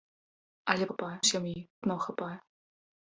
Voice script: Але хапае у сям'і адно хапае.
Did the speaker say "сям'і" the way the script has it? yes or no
yes